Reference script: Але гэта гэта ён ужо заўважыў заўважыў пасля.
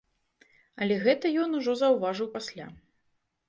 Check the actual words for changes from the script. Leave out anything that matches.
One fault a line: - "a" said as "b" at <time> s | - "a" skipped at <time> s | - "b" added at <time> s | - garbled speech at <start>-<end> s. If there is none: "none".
- "гэта" skipped at 1.3 s
- "заўважыў" skipped at 2.3 s